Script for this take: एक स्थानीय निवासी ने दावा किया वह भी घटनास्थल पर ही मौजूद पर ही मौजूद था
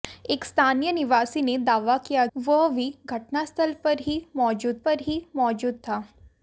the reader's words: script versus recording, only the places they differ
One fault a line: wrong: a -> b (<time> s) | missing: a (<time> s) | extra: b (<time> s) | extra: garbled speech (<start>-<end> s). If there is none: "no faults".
no faults